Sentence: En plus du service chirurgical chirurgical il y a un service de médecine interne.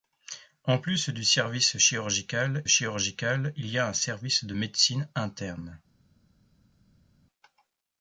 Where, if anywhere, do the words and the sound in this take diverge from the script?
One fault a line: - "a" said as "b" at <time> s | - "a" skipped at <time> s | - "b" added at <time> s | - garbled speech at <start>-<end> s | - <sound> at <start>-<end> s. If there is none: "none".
none